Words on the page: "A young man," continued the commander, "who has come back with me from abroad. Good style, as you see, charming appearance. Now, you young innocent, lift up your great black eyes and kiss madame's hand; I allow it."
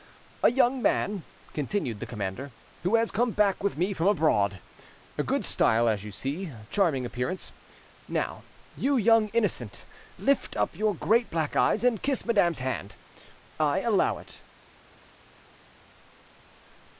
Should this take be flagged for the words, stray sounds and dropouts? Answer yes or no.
no